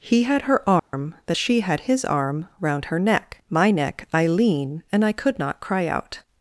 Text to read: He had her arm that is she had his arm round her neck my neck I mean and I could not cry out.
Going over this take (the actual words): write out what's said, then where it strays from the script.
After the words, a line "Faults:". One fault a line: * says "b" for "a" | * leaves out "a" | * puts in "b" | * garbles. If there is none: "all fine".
He had her arm that she had his arm round her neck my neck I lean and I could not cry out.
Faults:
* leaves out "is"
* says "lean" for "mean"